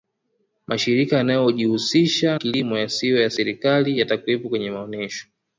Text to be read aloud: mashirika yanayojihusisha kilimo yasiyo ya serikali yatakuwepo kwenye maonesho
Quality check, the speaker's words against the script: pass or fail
pass